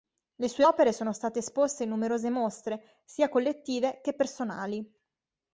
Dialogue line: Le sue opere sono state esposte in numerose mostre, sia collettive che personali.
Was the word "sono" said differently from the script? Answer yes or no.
no